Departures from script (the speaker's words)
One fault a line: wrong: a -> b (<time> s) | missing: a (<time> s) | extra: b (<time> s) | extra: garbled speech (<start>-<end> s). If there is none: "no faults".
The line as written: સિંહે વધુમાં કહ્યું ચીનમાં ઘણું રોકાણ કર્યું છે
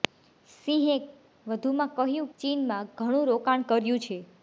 no faults